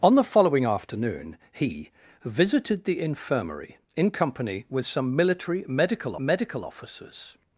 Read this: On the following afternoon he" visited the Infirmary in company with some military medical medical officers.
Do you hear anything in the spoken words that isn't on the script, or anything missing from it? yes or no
no